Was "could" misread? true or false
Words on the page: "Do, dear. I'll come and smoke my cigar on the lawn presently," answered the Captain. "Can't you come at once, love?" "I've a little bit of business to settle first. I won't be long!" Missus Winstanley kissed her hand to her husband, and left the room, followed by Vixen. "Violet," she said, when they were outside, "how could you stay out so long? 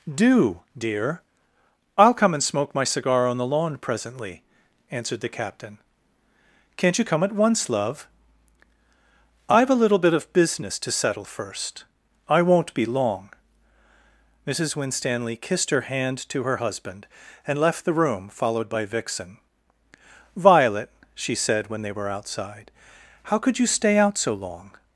false